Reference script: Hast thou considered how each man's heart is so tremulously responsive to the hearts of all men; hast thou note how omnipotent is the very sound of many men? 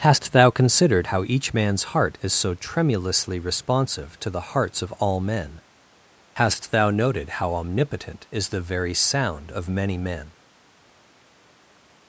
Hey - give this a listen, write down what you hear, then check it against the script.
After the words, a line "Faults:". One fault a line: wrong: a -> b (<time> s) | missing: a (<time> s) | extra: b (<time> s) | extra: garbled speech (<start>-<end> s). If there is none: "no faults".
Hast thou considered how each man's heart is so tremulously responsive to the hearts of all men; hast thou noted how omnipotent is the very sound of many men?
Faults:
wrong: note -> noted (6.9 s)